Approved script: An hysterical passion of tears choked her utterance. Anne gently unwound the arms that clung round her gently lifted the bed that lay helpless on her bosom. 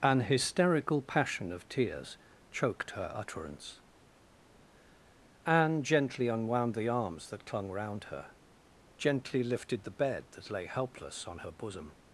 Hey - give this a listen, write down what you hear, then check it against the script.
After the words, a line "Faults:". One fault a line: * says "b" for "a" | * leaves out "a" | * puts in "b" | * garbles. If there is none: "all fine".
An hysterical passion of tears choked her utterance. Anne gently unwound the arms that clung round her gently lifted the bed that lay helpless on her bosom.
Faults:
all fine